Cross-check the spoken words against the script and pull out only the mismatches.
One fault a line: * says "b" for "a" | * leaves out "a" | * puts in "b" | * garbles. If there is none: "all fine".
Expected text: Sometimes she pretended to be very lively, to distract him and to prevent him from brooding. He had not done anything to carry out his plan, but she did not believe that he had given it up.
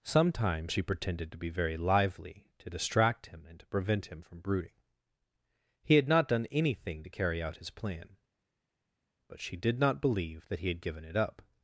all fine